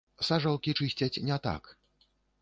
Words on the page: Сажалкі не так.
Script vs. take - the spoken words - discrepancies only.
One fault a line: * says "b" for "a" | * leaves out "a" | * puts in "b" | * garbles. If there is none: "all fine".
* puts in "чысцяць"